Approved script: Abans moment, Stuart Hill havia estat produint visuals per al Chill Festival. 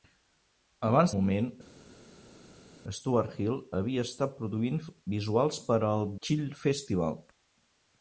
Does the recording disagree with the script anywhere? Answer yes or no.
no